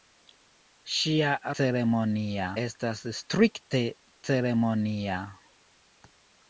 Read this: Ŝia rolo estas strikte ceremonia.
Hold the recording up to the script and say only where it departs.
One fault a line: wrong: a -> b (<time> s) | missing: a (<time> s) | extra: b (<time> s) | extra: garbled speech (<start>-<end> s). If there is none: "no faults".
wrong: rolo -> ceremonia (1.6 s)